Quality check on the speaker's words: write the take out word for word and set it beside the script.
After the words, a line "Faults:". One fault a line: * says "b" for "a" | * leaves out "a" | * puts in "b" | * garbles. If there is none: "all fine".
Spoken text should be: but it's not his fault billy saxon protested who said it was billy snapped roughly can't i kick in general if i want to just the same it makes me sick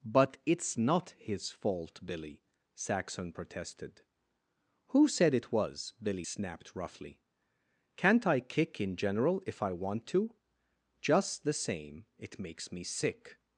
but it's not his fault billy saxon protested who said it was billy snapped roughly can't i kick in general if i want to just the same it makes me sick
Faults:
all fine